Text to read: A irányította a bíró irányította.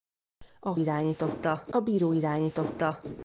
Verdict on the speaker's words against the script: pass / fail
pass